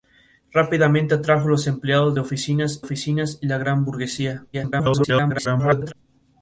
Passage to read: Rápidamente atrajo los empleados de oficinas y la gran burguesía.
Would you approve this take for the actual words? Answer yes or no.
no